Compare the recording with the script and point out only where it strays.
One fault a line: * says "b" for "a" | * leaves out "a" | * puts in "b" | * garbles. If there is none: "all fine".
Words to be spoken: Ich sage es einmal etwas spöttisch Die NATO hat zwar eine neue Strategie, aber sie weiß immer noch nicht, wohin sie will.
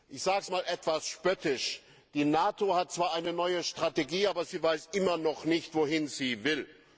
all fine